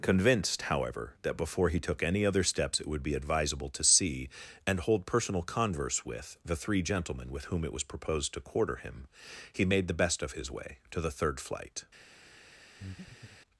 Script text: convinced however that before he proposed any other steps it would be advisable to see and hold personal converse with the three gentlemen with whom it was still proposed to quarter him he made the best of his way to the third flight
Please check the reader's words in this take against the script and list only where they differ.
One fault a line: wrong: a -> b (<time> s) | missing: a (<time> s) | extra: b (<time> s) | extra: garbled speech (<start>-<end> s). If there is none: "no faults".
wrong: proposed -> took (1.8 s)
missing: still (7.8 s)